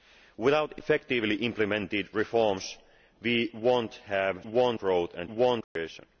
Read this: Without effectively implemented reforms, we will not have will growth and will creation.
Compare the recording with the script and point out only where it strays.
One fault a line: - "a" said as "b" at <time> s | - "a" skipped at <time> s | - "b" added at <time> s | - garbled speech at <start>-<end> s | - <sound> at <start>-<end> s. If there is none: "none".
- dropout at 5.6-5.8 s